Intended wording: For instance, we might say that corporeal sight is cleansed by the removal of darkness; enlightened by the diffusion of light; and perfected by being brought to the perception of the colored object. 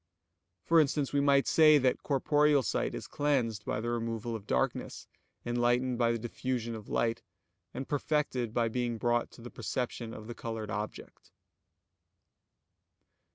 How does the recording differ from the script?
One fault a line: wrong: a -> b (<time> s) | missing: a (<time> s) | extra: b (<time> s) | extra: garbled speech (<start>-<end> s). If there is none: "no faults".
no faults